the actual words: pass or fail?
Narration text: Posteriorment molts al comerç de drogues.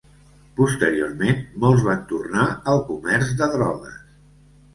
fail